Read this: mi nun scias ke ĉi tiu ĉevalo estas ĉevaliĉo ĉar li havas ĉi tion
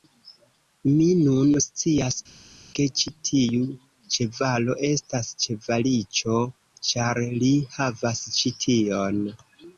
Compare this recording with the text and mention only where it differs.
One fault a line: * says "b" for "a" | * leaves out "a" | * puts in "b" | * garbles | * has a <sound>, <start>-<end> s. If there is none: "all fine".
all fine